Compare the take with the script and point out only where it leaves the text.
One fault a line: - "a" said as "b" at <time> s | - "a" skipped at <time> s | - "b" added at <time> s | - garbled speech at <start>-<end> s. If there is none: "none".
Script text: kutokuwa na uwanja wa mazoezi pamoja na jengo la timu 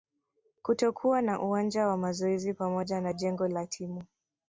none